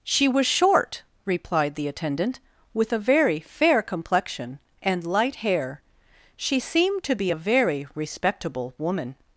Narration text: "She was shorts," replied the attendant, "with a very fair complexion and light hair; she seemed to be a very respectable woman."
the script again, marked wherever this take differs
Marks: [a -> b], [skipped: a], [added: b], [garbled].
"She was [shorts," -> short] replied the attendant, "with a very fair complexion and light hair; she seemed to be a very respectable woman."